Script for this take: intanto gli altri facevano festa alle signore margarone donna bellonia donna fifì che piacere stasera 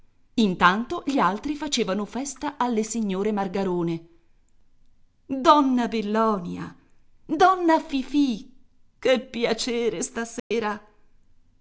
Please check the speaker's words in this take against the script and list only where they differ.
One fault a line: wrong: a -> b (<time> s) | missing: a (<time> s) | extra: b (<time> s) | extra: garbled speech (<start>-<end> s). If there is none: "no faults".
no faults